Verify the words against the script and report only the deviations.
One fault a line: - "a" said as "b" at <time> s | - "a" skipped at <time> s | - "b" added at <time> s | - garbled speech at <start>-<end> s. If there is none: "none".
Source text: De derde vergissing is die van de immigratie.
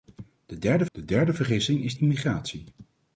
- "de derde" added at 0.9 s
- "die van de" skipped at 1.9 s